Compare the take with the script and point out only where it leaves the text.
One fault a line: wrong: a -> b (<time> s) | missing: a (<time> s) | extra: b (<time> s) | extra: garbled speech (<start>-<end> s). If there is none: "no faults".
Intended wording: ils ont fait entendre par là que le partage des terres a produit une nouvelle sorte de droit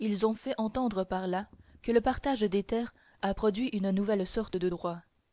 no faults